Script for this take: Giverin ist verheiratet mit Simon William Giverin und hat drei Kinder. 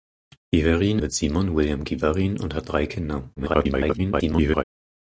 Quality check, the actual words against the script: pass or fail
fail